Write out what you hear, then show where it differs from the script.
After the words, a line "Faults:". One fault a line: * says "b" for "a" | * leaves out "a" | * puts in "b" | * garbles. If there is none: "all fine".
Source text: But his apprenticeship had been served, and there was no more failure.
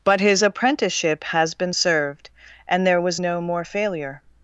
But his apprenticeship has been served, and there was no more failure.
Faults:
* says "has" for "had"